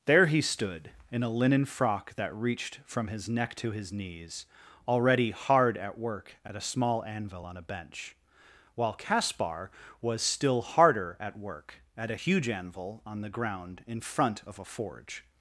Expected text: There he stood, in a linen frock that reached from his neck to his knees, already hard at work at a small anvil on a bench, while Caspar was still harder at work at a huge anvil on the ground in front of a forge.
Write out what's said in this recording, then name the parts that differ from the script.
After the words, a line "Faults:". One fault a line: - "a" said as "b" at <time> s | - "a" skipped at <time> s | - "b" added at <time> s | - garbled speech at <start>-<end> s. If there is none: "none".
There he stood, in a linen frock that reached from his neck to his knees, already hard at work at a small anvil on a bench, while Caspar was still harder at work at a huge anvil on the ground in front of a forge.
Faults:
none